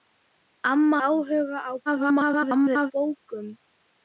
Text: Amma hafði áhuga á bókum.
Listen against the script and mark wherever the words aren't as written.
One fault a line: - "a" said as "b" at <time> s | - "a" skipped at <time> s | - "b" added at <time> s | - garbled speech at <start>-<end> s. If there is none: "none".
- "hafði" skipped at 1.0 s
- garbled speech at 1.9-2.9 s